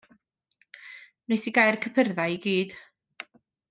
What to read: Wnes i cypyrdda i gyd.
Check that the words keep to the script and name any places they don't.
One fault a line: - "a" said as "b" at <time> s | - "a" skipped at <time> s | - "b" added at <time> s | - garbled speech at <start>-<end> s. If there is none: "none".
- "gau'r" added at 1.6 s